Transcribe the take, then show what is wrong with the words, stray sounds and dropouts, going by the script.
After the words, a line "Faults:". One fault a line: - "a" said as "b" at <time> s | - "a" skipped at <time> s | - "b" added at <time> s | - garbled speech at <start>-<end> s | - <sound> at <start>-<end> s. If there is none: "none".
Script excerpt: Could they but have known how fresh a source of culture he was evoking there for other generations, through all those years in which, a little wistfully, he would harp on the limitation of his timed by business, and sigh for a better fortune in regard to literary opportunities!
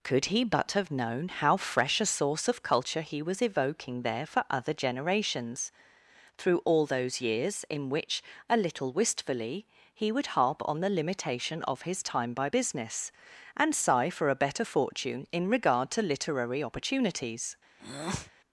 Could he but have known how fresh a source of culture he was evoking there for other generations, through all those years in which, a little wistfully, he would harp on the limitation of his time by business, and sigh for a better fortune in regard to literary opportunities!
Faults:
- "they" said as "he" at 0.2 s
- "timed" said as "time" at 12.0 s
- breath at 17.8-18.3 s